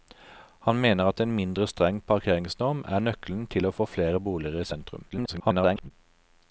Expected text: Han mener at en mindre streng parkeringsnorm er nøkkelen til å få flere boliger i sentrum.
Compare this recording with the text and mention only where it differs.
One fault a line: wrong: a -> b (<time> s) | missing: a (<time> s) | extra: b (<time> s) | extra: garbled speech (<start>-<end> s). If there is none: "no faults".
extra: garbled speech (5.1-5.9 s)